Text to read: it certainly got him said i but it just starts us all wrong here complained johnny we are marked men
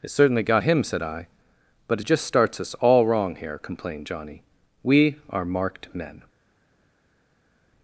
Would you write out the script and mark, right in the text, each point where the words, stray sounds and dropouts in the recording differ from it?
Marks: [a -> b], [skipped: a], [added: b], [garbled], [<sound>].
it certainly got him said i but it just starts us all wrong here complained johnny we are marked men